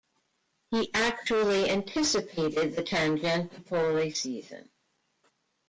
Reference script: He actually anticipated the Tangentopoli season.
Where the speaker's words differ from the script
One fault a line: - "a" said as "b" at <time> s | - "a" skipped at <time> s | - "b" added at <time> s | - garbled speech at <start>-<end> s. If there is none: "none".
none